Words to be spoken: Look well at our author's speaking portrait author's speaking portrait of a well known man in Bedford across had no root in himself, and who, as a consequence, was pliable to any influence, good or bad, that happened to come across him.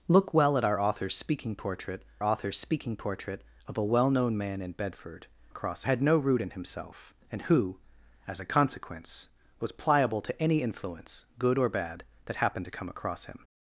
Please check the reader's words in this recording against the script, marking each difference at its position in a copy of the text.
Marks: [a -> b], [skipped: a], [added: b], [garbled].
Look well at our author's speaking portrait author's speaking portrait of a well known man in Bedford across had no root in himself, and who, as a consequence, was pliable to any influence, good or bad, that happened to come across him.